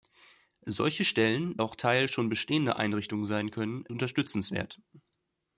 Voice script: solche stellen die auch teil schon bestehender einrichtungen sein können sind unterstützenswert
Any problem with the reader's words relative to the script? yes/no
yes